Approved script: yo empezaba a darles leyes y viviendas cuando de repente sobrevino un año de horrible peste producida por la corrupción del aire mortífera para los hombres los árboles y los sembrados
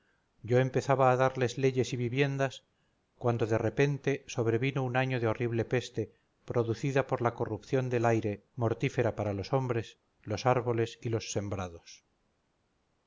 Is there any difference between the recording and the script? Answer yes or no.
no